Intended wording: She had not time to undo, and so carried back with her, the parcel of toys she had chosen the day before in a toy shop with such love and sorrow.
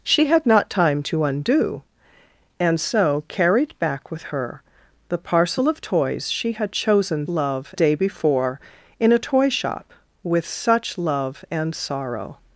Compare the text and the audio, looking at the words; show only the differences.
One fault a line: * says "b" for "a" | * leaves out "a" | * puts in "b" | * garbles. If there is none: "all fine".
* says "love" for "the"